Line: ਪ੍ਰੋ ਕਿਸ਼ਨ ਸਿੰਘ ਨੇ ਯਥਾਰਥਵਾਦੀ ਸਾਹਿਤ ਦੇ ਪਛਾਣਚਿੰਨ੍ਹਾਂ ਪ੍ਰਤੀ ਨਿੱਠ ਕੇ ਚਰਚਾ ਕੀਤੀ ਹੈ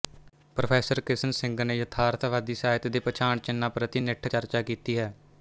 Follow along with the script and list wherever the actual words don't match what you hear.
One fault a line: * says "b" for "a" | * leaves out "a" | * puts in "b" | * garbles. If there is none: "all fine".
* leaves out "ਕੇ"